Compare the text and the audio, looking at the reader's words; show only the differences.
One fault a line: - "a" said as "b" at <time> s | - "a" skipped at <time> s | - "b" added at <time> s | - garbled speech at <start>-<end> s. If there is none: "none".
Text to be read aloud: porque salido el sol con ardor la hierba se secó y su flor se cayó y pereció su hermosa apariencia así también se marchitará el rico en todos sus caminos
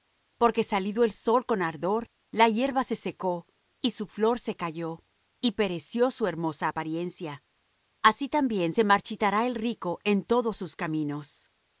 none